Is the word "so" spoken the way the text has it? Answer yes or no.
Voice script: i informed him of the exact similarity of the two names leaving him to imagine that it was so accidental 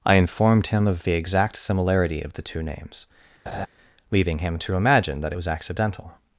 no